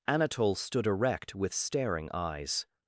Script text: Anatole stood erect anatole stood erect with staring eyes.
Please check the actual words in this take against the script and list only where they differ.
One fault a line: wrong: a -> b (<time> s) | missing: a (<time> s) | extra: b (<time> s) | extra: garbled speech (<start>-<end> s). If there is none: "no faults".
missing: anatole stood erect (1.4 s)